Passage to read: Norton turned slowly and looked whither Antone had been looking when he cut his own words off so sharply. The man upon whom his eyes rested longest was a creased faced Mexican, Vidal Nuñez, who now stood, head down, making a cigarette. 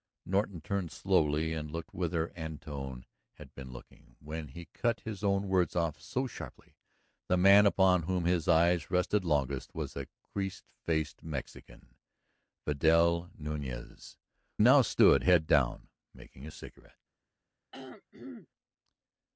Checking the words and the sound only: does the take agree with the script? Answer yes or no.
no